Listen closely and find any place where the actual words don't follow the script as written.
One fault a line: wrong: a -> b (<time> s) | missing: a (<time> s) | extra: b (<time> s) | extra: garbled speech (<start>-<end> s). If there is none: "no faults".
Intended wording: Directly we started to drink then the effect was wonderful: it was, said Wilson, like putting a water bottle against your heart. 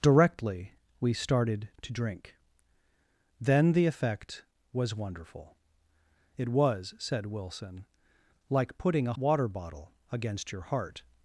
no faults